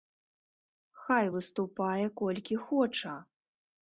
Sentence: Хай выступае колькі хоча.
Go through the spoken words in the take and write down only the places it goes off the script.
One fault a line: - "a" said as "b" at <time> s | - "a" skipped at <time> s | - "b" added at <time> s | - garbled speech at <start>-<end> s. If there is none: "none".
none